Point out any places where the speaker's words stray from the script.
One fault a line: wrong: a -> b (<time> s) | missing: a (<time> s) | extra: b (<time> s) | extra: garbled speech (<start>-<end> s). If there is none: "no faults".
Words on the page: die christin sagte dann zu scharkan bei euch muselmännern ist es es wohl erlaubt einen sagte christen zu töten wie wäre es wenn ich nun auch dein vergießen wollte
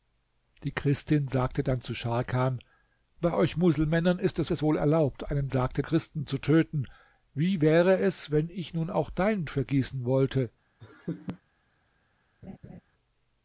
no faults